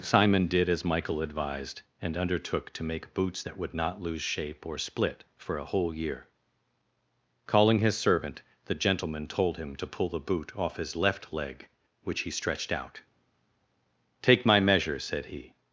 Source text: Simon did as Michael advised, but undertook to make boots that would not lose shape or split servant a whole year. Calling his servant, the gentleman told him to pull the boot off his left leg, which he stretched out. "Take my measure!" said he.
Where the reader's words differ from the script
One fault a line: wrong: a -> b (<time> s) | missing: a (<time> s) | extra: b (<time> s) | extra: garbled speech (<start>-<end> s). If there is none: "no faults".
wrong: but -> and (2.0 s)
wrong: servant -> for (5.4 s)